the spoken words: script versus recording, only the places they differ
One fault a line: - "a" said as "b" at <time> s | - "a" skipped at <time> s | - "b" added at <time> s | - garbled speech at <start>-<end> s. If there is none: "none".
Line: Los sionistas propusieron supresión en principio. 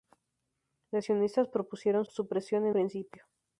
none